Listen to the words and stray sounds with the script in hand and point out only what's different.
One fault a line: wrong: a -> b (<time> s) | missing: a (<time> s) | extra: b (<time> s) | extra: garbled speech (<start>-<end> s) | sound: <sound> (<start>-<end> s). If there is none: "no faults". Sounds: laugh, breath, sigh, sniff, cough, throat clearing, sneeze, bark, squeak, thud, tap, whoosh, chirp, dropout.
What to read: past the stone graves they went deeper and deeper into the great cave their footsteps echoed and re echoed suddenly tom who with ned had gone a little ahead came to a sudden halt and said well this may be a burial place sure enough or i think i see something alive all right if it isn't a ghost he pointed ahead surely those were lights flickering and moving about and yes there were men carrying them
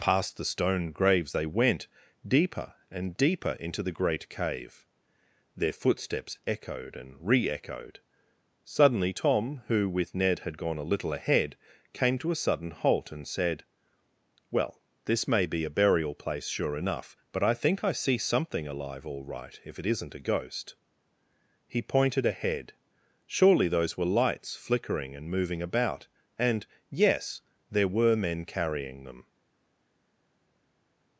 wrong: or -> but (17.3 s)